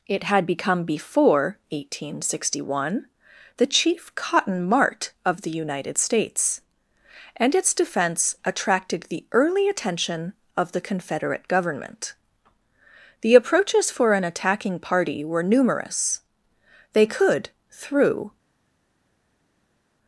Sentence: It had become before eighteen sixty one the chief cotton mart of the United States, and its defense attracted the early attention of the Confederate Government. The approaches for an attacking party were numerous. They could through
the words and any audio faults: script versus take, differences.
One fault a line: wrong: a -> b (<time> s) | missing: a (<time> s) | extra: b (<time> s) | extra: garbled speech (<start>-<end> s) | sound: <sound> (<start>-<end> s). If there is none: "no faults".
no faults